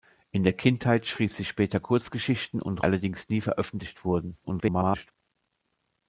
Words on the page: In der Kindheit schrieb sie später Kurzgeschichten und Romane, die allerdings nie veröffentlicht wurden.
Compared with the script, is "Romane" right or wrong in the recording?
wrong